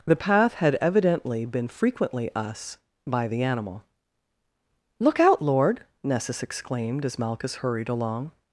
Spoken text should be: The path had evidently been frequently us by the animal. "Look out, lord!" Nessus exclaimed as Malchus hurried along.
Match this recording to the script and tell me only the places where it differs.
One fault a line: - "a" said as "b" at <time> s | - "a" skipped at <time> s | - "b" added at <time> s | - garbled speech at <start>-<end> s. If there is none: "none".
none